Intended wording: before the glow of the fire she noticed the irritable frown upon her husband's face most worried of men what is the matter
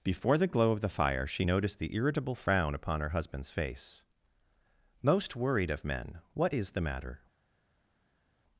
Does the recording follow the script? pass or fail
pass